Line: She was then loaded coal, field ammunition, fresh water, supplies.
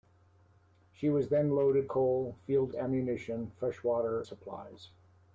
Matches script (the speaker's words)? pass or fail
pass